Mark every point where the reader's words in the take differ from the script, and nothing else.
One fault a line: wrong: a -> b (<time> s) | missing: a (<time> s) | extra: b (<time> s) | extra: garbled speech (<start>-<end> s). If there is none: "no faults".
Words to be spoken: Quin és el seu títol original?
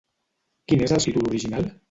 missing: seu (1.0 s)